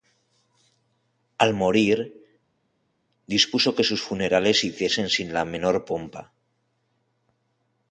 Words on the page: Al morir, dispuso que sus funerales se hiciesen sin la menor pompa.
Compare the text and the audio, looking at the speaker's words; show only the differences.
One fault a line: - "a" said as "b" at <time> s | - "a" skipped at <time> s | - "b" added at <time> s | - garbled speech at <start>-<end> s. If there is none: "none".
none